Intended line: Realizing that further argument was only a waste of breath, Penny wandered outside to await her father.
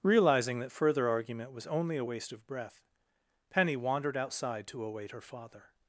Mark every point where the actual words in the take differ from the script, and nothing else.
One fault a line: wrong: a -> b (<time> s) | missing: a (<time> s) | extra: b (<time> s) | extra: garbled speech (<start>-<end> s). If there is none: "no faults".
no faults